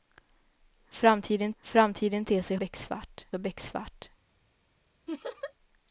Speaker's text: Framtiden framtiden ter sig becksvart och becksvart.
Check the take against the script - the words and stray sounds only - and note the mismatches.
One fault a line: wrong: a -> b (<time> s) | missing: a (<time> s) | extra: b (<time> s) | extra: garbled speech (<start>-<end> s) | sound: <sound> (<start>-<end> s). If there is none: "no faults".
sound: laugh (5.1-5.5 s)